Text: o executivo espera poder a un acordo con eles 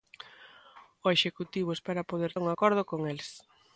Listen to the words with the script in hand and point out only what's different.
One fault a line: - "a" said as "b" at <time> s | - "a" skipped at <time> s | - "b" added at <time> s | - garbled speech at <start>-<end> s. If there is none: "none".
none